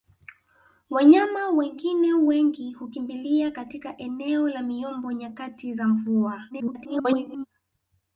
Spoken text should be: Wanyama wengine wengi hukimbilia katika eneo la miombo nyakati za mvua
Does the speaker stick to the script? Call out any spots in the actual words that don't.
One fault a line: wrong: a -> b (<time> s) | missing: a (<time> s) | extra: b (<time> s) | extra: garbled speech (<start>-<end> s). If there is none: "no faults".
extra: garbled speech (6.5-7.5 s)